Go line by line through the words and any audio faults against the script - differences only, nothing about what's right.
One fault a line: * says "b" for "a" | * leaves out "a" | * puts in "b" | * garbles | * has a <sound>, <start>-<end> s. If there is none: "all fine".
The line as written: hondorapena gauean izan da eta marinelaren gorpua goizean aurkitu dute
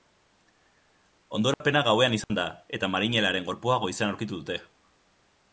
* has a dropout, 1.5-1.6 s
* has a dropout, 2.2-2.3 s